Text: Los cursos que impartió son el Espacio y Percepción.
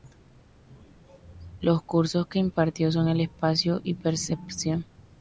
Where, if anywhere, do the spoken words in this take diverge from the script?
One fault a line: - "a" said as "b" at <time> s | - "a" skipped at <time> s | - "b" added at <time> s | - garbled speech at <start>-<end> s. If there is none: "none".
none